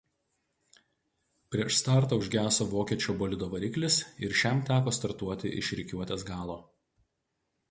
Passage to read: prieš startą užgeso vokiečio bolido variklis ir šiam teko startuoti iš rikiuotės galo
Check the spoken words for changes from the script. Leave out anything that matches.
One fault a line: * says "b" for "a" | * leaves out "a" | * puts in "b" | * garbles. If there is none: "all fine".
all fine